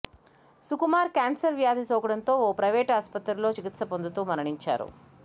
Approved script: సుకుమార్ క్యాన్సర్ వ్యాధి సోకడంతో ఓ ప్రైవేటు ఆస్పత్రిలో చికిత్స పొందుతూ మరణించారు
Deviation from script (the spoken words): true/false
false